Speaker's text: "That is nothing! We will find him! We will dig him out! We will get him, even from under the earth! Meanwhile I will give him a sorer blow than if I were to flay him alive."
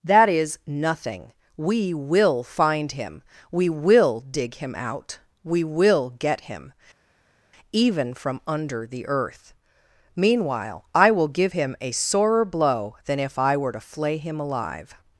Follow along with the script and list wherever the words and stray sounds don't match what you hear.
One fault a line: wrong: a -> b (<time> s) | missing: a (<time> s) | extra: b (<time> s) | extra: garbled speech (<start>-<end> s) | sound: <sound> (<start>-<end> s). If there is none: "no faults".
no faults